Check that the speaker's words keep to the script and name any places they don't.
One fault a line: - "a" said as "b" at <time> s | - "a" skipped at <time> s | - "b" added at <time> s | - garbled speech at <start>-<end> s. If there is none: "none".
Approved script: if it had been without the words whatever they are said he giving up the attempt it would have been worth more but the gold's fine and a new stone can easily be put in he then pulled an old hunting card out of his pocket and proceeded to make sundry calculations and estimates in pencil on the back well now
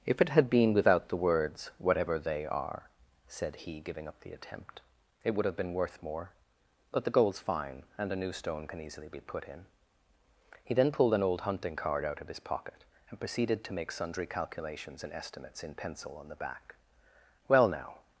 none